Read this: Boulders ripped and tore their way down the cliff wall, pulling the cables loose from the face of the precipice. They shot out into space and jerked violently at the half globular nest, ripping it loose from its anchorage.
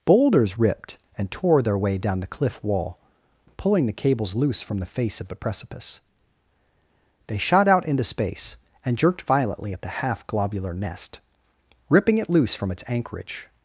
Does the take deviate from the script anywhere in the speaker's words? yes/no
no